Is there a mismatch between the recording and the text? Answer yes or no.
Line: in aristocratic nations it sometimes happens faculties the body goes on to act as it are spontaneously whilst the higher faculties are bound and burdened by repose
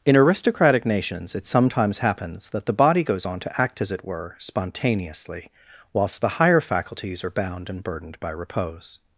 yes